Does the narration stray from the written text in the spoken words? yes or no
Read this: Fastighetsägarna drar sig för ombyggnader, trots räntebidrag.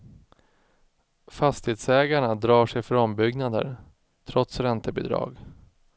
no